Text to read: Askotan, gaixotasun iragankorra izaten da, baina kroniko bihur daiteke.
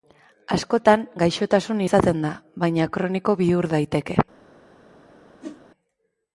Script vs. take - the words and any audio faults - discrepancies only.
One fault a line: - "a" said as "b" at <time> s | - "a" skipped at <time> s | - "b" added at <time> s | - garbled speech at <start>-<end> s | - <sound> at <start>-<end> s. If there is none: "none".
- "iragankorra" skipped at 1.8 s
- whoosh at 5.4-5.6 s